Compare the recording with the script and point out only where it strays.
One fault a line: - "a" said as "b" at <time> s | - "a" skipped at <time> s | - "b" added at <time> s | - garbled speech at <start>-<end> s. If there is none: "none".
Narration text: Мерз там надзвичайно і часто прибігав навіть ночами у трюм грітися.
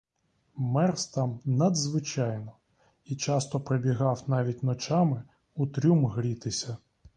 none